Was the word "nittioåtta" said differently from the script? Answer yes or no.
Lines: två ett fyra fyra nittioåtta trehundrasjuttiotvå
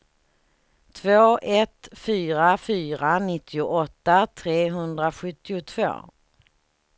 no